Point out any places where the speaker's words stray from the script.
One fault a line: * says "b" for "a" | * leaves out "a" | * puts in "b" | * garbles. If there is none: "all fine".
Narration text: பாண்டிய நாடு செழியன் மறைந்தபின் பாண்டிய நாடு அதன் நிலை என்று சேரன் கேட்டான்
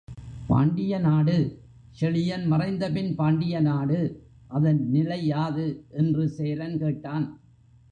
* puts in "யாது"